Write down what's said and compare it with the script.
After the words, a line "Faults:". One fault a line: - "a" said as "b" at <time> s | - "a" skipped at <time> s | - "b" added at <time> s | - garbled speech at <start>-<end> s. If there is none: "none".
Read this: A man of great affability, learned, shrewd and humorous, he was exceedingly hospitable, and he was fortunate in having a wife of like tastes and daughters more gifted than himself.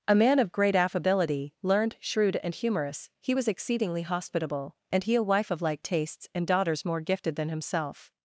A man of great affability, learned, shrewd and humorous, he was exceedingly hospitable, and he a wife of like tastes and daughters more gifted than himself.
Faults:
- "was fortunate in having" skipped at 5.1 s